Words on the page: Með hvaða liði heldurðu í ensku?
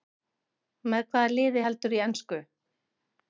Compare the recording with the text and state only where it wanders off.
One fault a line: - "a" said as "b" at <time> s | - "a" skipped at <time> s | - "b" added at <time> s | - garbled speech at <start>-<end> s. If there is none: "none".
none